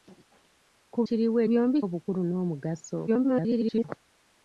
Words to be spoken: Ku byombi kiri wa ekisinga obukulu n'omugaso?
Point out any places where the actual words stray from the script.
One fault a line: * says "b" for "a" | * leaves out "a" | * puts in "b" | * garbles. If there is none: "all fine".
* leaves out "byombi"
* says "byombi" for "ekisinga"
* garbles